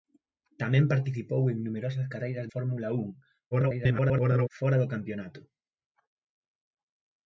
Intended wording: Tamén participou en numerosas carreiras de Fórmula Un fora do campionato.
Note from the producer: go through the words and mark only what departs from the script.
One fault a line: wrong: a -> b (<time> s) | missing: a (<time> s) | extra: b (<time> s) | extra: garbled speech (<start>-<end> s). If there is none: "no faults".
missing: de (2.5 s)
extra: garbled speech (3.5-4.5 s)